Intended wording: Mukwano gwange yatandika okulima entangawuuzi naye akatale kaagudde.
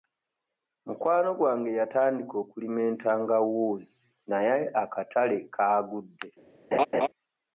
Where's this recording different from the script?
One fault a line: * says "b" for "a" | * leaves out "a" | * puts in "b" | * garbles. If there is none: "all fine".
all fine